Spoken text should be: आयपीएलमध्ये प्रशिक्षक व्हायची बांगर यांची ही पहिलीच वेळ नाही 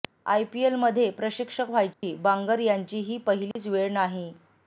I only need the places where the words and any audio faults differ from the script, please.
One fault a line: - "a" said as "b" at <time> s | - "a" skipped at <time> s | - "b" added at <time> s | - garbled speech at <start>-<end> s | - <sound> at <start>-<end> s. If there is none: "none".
- dropout at 1.9-2.0 s
- dropout at 3.5-3.6 s